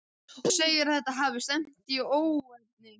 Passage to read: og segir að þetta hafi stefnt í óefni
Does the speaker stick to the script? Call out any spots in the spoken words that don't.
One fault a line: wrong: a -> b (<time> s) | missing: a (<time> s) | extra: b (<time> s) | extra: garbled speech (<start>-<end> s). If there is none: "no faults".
no faults